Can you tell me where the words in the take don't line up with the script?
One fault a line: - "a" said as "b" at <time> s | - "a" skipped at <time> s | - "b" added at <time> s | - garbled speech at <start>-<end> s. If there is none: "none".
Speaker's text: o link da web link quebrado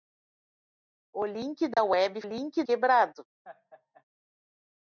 none